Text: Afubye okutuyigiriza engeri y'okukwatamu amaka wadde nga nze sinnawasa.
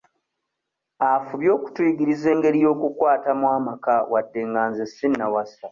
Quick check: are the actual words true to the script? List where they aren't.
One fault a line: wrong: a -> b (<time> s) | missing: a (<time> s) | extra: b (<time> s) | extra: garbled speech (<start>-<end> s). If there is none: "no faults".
no faults